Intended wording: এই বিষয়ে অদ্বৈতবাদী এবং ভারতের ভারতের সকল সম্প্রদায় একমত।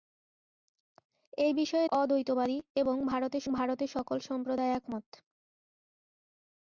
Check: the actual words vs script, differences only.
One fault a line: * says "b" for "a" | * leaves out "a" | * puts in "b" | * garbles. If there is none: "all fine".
all fine